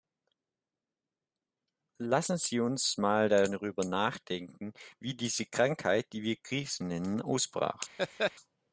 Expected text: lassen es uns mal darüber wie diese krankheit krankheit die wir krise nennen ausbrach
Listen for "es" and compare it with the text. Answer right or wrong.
wrong